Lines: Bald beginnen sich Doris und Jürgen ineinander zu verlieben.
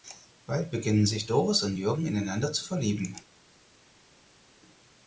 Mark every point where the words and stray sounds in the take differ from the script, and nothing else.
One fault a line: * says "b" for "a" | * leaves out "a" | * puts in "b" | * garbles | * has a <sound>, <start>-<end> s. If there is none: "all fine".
all fine